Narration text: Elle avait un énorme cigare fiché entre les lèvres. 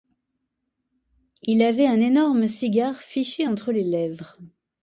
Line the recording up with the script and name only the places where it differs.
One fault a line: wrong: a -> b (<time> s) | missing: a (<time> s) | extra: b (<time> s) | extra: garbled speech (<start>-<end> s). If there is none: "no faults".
wrong: Elle -> Il (1.4 s)